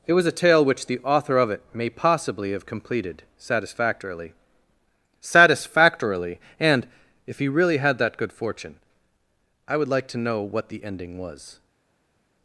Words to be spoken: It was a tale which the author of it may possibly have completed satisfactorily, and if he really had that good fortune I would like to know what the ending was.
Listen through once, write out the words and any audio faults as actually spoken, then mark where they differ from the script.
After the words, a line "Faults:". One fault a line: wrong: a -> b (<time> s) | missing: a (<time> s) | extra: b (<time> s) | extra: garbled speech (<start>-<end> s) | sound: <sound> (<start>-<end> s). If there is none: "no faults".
It was a tale which the author of it may possibly have completed satisfactorily satisfactorily, and if he really had that good fortune I would like to know what the ending was.
Faults:
extra: satisfactorily (5.2 s)